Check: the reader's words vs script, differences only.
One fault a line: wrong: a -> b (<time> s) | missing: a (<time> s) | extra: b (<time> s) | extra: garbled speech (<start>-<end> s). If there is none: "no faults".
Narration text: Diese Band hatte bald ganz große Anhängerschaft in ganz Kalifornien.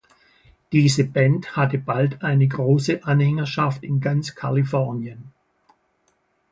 wrong: ganz -> eine (2.2 s)